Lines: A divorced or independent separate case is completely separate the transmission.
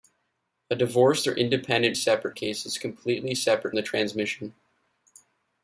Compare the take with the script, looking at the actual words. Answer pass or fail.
pass